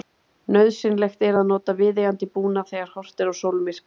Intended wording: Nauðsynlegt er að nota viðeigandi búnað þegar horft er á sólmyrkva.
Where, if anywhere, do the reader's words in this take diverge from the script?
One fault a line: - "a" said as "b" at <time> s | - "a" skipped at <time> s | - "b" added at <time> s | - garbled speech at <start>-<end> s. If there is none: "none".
none